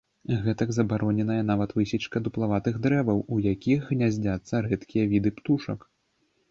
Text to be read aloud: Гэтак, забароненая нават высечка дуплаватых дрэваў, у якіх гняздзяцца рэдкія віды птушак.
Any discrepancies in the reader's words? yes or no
no